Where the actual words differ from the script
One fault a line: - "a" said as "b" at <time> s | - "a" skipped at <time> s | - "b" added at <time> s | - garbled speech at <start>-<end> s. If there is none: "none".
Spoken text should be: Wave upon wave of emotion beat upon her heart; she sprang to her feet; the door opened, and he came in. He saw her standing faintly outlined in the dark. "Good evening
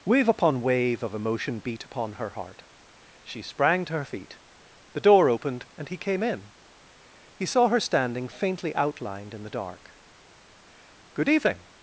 none